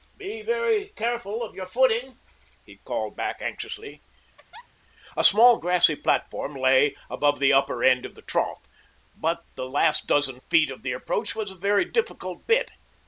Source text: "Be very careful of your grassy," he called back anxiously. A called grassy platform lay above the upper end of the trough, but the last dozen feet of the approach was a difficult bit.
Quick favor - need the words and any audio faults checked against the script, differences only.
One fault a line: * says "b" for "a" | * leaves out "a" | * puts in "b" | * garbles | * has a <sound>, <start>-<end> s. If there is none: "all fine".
* says "footing" for "grassy"
* has a laugh, 4.4-4.7 s
* says "small" for "called"
* puts in "very"